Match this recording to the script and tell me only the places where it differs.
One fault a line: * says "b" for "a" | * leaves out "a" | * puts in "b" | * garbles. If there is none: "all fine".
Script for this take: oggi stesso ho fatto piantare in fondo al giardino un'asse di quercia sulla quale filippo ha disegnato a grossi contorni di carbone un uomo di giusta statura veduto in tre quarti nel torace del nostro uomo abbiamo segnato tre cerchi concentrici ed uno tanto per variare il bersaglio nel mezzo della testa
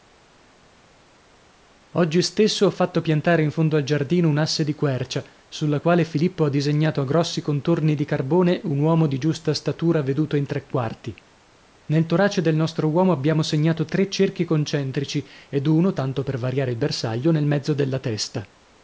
all fine